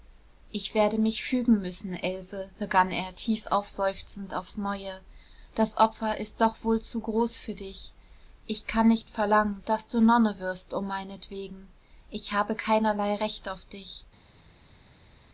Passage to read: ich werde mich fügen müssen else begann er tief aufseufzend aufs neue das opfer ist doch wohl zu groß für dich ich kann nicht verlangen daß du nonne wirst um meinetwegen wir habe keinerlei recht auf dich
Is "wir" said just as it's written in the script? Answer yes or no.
no